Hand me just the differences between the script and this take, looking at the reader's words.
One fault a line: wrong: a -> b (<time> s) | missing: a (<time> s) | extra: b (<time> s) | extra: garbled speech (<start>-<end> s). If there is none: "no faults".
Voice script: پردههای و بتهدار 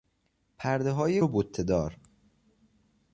no faults